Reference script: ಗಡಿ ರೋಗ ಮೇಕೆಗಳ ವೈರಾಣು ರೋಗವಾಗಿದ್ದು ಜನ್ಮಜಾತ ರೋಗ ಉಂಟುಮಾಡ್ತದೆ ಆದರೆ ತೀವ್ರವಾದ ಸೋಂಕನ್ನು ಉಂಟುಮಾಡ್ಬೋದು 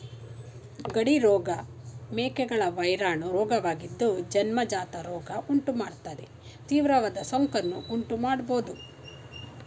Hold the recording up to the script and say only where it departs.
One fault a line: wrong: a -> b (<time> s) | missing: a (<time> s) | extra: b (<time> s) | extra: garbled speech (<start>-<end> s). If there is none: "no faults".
missing: ಆದರೆ (6.3 s)